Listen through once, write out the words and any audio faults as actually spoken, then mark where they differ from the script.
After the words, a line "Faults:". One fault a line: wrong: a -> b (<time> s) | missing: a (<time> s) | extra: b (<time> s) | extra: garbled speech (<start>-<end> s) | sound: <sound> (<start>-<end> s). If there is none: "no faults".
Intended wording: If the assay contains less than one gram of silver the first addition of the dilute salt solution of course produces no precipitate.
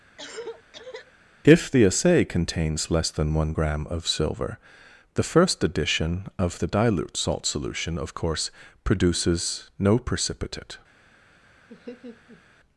If the assay contains less than one gram of silver the first addition of the dilute salt solution of course produces no precipitate.
Faults:
sound: cough (0.2-1.1 s)
sound: laugh (11.7-12.4 s)